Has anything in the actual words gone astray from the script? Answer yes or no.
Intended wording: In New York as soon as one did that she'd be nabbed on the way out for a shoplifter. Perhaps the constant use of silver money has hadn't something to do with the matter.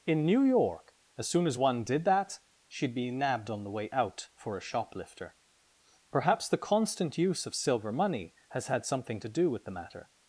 yes